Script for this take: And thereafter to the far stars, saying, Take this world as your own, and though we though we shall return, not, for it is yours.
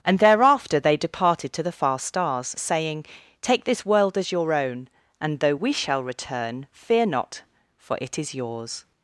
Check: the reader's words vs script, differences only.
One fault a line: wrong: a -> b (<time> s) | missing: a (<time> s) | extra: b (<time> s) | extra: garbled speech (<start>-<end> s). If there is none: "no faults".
extra: they departed (0.8 s)
missing: though we (5.7 s)
extra: fear (6.7 s)